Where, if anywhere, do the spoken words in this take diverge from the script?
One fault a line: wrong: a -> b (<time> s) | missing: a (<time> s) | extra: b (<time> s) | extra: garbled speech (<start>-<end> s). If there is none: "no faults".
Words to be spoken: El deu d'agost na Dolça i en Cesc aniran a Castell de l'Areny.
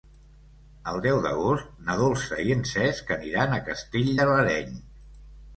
no faults